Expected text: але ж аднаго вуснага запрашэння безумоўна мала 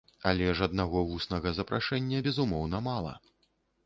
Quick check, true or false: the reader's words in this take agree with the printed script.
true